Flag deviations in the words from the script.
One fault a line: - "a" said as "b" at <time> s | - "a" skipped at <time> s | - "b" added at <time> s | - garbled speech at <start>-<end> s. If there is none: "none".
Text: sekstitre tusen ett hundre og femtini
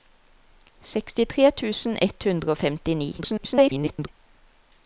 - garbled speech at 3.2-4.1 s